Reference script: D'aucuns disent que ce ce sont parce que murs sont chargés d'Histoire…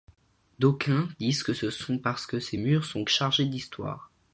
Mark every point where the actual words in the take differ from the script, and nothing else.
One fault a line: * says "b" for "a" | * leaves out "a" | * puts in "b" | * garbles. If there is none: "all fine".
* leaves out "ce"
* puts in "ces"